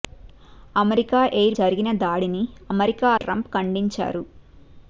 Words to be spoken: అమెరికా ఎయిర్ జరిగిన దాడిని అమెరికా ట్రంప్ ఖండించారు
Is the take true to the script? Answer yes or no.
yes